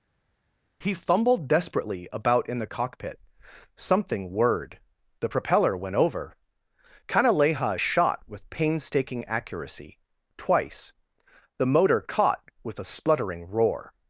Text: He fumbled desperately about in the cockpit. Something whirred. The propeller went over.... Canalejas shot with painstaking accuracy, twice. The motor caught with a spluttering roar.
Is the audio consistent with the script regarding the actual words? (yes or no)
yes